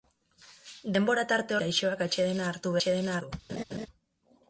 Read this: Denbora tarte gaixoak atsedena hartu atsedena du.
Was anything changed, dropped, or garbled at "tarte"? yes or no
no